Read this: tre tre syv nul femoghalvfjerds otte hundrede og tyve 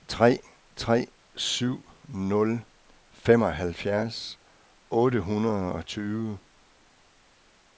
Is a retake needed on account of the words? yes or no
no